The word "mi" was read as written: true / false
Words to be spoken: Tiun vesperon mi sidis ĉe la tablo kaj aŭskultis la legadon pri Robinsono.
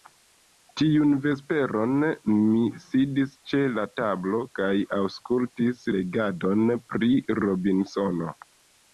true